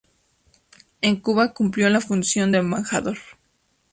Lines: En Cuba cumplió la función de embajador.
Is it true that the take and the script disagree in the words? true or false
false